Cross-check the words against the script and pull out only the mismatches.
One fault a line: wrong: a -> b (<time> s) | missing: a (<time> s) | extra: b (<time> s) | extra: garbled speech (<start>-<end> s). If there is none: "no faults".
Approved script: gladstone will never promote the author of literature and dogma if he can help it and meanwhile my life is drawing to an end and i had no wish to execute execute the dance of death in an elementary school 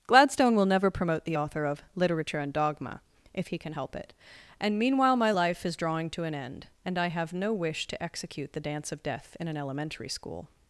wrong: had -> have (7.1 s)
missing: execute (8.5 s)